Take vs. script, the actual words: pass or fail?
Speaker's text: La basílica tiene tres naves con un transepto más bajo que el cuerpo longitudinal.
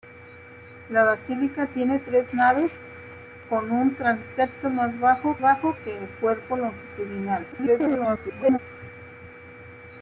fail